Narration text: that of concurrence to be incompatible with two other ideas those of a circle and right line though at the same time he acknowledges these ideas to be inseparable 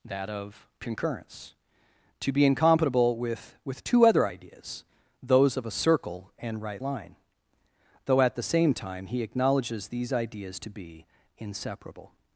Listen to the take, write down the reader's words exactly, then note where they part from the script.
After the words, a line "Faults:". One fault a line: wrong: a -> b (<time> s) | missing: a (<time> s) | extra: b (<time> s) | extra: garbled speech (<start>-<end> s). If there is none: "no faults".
that of concurrence to be incompatible with with two other ideas those of a circle and right line though at the same time he acknowledges these ideas to be inseparable
Faults:
extra: with (3.6 s)